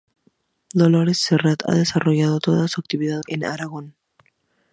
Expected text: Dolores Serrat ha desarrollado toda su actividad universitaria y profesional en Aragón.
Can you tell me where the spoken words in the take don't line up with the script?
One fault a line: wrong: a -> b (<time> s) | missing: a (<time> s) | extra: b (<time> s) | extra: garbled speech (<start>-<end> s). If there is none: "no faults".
missing: universitaria y profesional (3.2 s)